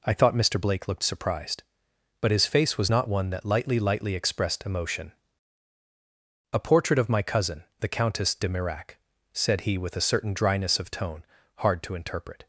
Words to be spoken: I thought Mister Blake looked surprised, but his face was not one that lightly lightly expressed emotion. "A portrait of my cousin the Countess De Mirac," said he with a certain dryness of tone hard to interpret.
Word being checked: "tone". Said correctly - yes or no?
yes